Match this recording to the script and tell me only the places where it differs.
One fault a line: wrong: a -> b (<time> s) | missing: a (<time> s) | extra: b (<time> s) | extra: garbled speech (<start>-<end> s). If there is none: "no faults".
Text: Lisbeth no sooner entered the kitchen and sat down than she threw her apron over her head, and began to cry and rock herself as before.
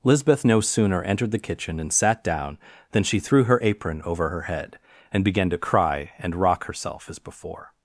no faults